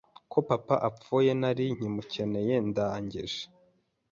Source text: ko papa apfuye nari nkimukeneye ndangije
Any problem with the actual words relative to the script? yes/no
no